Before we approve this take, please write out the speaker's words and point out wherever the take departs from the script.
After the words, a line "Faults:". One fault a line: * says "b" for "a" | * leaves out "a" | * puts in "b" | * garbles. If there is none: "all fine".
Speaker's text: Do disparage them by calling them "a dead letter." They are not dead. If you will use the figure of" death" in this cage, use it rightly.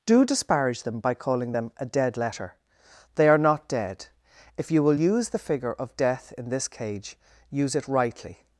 Do disparage them by calling them "a dead letter." They are not dead. If you will use the figure of" death" in this cage, use it rightly.
Faults:
all fine